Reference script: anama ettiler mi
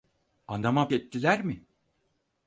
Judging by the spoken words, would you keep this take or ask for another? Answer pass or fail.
pass